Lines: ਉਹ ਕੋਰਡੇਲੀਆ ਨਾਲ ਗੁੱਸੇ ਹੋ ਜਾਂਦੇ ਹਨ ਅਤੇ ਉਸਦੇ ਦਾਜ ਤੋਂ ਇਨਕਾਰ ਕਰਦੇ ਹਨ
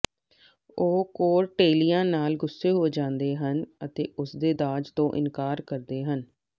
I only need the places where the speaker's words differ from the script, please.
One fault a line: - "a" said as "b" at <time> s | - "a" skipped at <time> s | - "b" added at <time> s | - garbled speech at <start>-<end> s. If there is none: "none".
none